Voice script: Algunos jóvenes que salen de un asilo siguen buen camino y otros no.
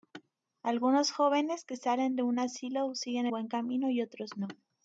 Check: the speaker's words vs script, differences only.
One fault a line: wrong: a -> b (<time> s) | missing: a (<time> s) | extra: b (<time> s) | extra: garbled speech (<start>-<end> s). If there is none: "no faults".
no faults